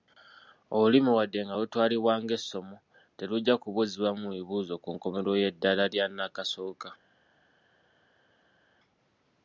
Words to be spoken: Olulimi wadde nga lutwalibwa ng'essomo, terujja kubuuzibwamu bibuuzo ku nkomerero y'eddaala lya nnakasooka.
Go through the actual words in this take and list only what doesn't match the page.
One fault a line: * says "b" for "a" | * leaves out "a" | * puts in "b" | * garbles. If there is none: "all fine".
all fine